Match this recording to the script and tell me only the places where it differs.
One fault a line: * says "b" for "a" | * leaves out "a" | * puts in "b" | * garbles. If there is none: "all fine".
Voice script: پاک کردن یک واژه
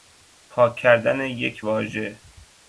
all fine